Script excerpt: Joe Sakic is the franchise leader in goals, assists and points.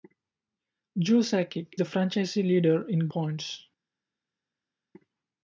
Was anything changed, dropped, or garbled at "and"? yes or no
yes